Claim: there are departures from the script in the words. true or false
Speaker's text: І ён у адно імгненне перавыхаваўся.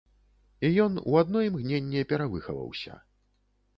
false